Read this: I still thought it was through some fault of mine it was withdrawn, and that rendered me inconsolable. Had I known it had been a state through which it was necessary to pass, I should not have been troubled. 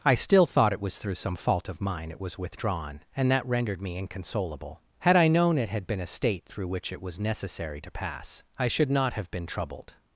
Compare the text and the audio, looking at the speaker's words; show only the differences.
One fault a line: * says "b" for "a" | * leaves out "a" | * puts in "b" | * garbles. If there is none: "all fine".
all fine